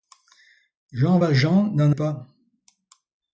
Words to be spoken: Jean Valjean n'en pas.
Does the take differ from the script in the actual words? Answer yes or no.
no